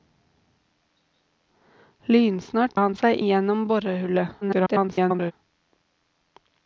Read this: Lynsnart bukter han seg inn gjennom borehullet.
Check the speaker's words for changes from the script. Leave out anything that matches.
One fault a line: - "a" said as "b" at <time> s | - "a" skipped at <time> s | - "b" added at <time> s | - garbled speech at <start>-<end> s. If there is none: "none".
- "bukter" skipped at 2.8 s
- "inn" skipped at 3.2 s
- garbled speech at 4.4-5.3 s